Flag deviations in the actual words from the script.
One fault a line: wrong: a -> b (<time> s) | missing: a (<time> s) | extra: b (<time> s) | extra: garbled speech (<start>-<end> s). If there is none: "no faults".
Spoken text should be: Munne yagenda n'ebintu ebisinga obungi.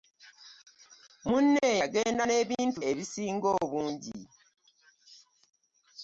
no faults